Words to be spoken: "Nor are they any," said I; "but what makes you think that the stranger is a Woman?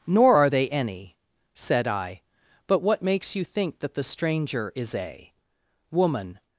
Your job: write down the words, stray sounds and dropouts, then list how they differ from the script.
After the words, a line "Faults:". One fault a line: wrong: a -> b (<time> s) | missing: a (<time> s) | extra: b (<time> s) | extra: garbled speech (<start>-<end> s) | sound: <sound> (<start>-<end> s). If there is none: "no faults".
"Nor are they any," said I; "but what makes you think that the stranger is a Woman?
Faults:
no faults